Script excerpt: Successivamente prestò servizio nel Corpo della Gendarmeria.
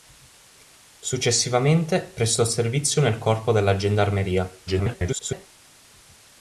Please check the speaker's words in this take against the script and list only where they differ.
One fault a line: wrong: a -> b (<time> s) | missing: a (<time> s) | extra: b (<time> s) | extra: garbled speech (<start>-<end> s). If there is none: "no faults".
extra: garbled speech (4.7-5.5 s)